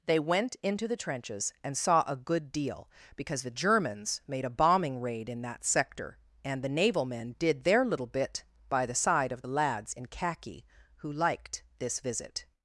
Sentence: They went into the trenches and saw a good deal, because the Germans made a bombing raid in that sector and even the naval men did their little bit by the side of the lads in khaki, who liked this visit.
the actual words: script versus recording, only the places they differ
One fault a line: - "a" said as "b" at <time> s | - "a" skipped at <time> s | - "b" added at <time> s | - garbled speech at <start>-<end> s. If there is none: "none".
- "even" skipped at 6.6 s